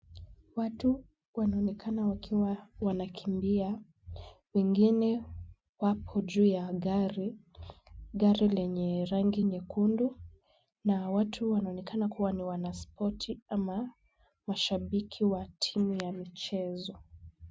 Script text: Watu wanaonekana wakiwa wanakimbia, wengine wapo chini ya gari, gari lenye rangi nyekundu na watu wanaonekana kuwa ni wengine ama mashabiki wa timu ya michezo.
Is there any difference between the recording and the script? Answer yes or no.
yes